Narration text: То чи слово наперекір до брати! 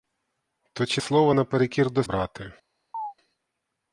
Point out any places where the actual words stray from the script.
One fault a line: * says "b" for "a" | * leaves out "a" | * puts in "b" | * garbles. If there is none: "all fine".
all fine